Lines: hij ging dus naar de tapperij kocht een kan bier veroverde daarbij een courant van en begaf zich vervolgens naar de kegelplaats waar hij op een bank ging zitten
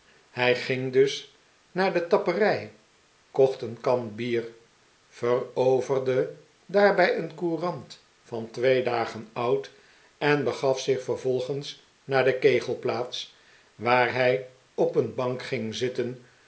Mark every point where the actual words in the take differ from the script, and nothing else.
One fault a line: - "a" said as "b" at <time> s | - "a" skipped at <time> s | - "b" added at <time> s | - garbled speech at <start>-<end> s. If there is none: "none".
- "twee dagen oud" added at 8.5 s